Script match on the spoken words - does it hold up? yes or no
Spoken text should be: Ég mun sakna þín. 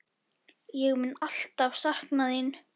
no